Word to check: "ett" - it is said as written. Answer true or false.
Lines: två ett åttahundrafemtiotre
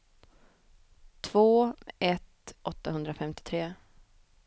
true